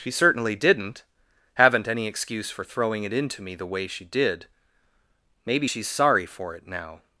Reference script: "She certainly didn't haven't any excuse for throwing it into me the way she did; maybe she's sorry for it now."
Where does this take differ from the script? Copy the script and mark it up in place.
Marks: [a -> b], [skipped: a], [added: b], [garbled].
"She certainly didn't haven't any excuse for throwing it into me the way she did; maybe she's sorry for it now."